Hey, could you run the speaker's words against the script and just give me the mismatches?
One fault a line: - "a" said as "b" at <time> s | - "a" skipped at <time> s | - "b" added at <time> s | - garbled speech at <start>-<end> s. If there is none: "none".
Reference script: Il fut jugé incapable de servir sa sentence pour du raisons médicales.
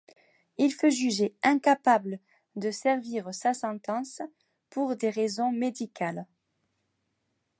- "du" said as "des" at 4.9 s